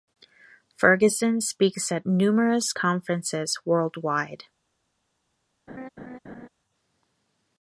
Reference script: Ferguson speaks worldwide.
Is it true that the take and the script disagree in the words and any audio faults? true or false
true